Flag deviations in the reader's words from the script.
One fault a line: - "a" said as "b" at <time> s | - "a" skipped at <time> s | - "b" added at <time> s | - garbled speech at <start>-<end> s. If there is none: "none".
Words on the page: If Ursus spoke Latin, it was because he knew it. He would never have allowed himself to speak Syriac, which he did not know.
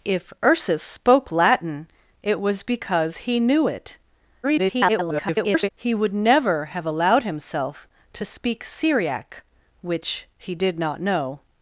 - garbled speech at 4.4-5.7 s